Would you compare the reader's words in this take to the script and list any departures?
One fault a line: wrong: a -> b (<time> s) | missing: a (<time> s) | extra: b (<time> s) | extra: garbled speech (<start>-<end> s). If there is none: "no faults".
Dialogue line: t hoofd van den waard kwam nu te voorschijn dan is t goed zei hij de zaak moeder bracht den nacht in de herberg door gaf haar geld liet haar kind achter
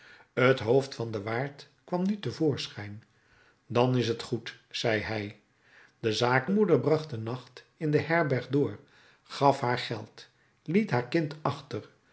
no faults